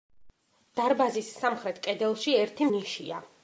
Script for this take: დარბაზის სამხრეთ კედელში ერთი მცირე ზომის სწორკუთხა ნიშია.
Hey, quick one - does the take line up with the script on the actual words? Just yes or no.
no